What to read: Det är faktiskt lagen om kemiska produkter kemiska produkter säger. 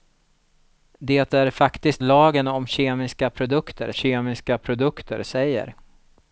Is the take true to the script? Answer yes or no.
yes